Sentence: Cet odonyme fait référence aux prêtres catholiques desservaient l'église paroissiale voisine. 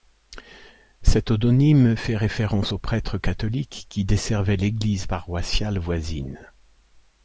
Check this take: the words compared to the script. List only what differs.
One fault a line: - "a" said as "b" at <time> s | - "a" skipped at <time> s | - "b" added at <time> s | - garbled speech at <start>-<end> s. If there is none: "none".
- "qui" added at 3.9 s